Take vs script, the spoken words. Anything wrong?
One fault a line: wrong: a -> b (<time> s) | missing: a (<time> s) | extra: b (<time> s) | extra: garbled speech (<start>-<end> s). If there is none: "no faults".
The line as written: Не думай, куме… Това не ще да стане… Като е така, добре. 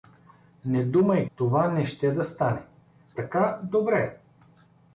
missing: куме (1.3 s)
missing: Като е (2.7 s)